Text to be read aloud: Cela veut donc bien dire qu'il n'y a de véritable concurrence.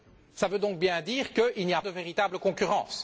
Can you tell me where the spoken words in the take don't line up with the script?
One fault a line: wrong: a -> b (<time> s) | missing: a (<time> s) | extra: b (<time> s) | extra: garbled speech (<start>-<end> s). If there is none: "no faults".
no faults